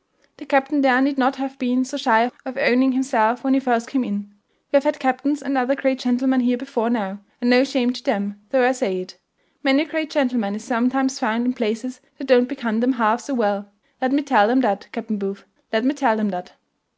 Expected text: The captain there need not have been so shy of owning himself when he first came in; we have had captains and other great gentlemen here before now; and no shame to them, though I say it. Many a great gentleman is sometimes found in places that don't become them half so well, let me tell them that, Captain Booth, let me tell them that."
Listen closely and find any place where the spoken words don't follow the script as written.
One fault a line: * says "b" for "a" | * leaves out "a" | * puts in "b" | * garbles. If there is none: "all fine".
all fine